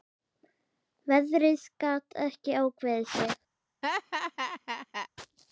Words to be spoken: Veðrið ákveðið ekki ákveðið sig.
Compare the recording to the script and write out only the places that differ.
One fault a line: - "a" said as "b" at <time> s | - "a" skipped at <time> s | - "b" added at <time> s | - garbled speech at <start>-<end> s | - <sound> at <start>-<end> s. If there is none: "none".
- "ákveðið" said as "gat" at 1.9 s
- laugh at 3.8-5.1 s